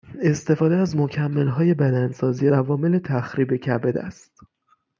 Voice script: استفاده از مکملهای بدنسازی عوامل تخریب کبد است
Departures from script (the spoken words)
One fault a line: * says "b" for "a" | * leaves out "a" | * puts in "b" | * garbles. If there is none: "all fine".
all fine